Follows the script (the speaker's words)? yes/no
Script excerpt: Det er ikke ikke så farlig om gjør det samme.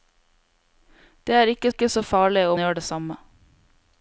yes